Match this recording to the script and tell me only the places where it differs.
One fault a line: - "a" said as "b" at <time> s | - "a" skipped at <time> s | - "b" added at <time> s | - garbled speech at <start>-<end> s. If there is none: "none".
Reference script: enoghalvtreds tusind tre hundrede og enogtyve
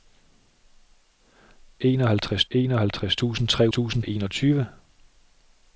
- "enoghalvtreds" added at 2.5 s
- "hundrede" said as "tusind" at 3.7 s